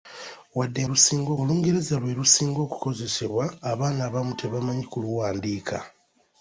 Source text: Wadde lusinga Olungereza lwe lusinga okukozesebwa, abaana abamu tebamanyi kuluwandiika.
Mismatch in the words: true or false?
false